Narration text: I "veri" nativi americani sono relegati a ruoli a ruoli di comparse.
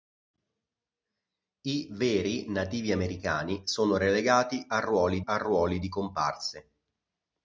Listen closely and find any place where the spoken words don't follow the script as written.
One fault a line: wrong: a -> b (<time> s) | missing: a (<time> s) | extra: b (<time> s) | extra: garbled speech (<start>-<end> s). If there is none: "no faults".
no faults